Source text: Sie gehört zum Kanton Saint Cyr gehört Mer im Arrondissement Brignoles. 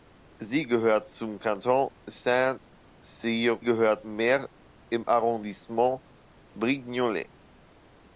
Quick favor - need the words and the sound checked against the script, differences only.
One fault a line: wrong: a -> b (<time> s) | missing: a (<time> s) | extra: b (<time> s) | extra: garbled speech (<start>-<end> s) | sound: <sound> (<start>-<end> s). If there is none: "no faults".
no faults